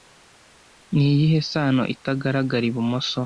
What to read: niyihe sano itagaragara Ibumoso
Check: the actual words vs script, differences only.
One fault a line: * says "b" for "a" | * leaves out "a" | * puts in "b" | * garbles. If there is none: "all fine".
all fine